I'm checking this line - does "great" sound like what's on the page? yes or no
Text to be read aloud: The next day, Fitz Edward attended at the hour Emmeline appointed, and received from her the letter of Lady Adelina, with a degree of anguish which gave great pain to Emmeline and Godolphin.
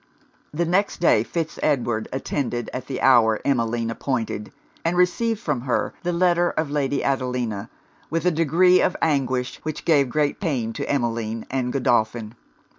yes